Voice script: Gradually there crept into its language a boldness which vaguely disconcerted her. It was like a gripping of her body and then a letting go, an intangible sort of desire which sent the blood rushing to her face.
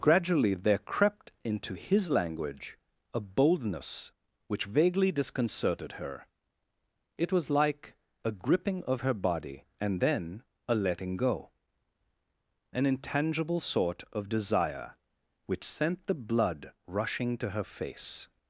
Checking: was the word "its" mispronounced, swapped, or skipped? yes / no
yes